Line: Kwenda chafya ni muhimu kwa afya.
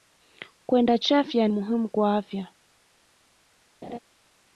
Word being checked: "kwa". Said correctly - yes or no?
yes